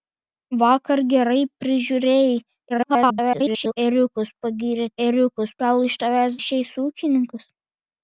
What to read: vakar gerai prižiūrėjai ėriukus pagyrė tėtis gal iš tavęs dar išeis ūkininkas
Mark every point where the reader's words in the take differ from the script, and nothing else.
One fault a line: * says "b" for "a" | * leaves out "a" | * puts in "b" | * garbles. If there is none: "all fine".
* garbles
* says "ėriukus" for "tėtis"
* leaves out "dar"